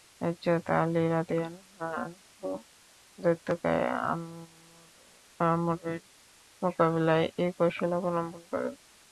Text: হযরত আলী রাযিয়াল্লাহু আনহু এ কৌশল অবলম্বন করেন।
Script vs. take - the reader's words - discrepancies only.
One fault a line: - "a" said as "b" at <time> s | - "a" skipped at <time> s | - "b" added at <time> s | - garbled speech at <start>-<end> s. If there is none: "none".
- "দৈত্যকায় আমরের মোকাবিলায়" added at 3.2 s